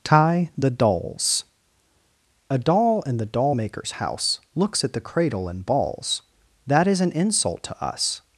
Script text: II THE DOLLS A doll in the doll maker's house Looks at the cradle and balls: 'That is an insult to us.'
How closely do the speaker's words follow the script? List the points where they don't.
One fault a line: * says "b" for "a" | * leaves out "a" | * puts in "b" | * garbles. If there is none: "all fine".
* says "Tie" for "II"